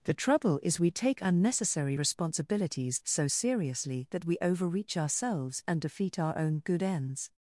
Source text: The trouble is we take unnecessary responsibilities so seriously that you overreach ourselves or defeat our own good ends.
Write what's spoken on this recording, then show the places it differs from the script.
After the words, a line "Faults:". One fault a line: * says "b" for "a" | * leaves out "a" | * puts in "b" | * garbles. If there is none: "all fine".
The trouble is we take unnecessary responsibilities so seriously that we overreach ourselves and defeat our own good ends.
Faults:
* says "we" for "you"
* says "and" for "or"